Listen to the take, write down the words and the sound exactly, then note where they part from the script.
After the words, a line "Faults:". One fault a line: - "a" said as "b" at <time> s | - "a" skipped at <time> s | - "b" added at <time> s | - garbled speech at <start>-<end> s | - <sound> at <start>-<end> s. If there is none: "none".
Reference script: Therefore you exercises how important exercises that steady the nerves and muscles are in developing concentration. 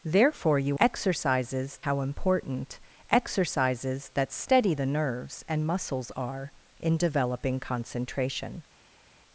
Therefore you exercises how important exercises that steady the nerves and muscles are in developing concentration.
Faults:
none